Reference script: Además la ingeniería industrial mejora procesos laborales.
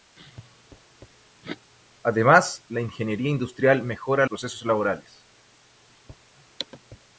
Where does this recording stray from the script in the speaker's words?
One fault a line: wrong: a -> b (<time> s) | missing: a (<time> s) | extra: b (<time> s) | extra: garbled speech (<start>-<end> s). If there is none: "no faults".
no faults